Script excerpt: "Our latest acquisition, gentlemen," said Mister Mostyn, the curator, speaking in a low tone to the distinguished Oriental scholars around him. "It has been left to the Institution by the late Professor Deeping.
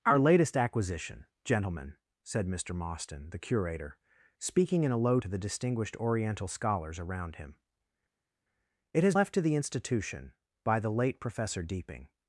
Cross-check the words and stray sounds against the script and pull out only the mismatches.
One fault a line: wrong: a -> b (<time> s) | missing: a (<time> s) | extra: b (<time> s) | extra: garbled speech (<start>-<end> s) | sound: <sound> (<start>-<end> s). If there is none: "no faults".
missing: tone (5.2 s)
missing: been (9.1 s)